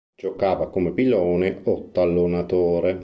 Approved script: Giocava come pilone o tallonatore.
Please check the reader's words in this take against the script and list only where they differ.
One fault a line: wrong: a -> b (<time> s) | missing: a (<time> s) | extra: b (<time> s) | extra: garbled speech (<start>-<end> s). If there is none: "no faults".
no faults